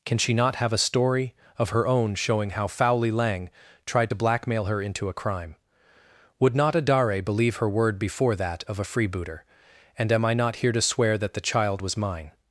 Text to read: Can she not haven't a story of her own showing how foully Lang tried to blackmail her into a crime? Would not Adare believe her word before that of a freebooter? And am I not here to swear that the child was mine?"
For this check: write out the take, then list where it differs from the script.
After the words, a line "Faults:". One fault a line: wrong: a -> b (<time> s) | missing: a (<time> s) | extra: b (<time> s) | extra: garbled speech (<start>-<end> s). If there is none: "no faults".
Can she not have a story of her own showing how foully Lang tried to blackmail her into a crime? Would not Adare believe her word before that of a freebooter? And am I not here to swear that the child was mine?"
Faults:
wrong: haven't -> have (0.6 s)